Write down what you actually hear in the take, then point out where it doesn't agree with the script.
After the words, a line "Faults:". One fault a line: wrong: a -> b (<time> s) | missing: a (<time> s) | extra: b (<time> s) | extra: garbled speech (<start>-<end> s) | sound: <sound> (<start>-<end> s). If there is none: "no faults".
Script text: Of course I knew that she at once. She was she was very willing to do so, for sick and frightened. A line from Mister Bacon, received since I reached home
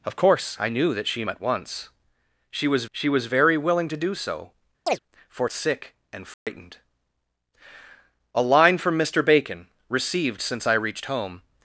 Of course I knew that she at once. She was she was very willing to do so, for sick and frightened. A line from Mister Bacon, received since I reached home
Faults:
sound: chirp (4.9-5.0 s)
sound: dropout (6.3-6.5 s)